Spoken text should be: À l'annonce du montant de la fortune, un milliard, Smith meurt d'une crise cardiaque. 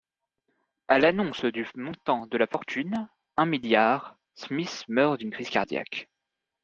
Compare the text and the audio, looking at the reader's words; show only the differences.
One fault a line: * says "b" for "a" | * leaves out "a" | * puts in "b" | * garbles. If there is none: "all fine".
all fine